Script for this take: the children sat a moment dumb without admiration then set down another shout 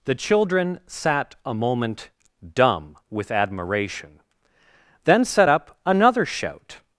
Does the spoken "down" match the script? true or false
false